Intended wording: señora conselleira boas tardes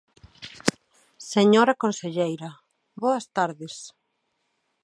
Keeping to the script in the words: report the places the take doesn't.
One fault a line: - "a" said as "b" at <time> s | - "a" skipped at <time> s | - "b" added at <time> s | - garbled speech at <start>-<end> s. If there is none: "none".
none